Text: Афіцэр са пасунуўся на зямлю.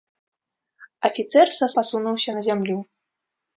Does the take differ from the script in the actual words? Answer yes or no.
no